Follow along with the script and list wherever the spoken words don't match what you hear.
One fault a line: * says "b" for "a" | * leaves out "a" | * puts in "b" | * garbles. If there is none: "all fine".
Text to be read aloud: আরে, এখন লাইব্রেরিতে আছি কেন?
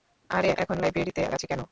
all fine